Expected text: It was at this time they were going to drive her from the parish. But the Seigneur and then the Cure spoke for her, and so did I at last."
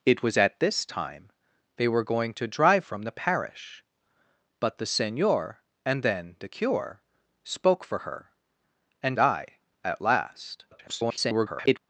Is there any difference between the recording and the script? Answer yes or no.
yes